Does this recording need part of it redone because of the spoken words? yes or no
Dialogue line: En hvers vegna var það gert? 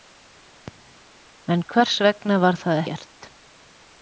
no